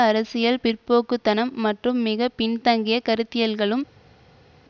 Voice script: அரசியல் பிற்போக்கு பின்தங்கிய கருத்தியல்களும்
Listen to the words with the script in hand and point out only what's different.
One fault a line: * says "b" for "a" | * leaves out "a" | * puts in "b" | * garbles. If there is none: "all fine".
* puts in "தனம் மற்றும் மிக"